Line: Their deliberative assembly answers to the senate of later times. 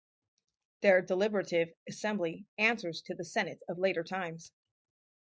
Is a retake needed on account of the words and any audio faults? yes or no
no